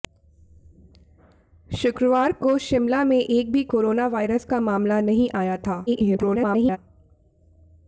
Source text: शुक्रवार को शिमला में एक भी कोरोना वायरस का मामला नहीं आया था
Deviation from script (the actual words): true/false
true